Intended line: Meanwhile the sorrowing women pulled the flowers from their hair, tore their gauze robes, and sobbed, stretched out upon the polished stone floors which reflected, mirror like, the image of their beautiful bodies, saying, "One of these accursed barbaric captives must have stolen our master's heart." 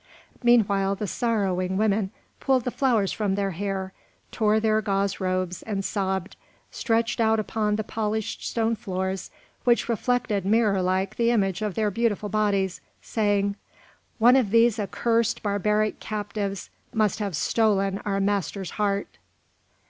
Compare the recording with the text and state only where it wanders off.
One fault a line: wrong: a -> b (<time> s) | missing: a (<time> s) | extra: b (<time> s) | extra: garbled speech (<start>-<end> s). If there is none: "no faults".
no faults